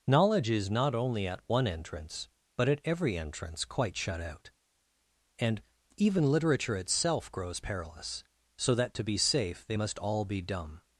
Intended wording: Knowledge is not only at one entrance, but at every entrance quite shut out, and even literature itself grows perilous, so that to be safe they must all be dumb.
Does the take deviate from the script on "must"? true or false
false